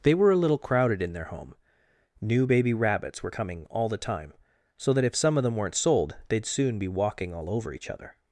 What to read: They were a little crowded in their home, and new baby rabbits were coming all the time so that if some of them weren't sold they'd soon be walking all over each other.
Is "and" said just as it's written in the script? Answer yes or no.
no